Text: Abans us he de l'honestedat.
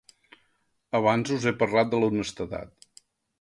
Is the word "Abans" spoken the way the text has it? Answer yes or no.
yes